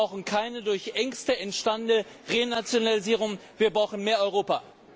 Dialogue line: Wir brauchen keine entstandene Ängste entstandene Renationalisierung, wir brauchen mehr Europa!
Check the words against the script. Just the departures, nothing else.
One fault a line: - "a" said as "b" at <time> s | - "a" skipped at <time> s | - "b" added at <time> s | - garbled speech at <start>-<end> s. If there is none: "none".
- "entstandene" said as "durch" at 0.6 s